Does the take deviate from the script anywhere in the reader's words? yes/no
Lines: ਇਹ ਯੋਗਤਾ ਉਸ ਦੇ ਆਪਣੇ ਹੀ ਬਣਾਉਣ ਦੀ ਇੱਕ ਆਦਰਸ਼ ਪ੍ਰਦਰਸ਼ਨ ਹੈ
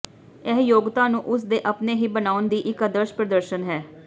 yes